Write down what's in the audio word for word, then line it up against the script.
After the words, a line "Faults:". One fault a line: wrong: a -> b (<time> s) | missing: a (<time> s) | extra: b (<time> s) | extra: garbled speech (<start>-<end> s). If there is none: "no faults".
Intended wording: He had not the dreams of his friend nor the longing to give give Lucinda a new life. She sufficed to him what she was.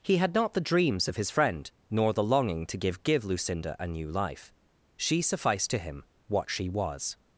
He had not the dreams of his friend nor the longing to give give Lucinda a new life. She sufficed to him what she was.
Faults:
no faults